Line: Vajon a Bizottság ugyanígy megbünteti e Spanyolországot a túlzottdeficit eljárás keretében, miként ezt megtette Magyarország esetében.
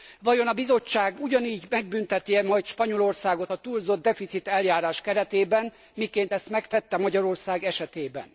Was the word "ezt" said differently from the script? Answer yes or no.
no